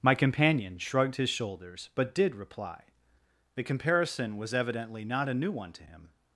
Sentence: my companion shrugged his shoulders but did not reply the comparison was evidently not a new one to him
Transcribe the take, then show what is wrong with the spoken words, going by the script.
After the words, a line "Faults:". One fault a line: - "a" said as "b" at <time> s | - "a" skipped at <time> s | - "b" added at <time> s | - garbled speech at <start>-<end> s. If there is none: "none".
my companion shrugged his shoulders but did reply the comparison was evidently not a new one to him
Faults:
- "not" skipped at 2.4 s